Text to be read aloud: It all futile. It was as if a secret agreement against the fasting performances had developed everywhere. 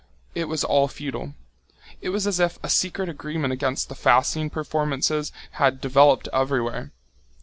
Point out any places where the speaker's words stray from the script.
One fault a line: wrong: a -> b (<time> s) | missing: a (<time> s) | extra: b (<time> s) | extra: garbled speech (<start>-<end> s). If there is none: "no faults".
extra: was (0.5 s)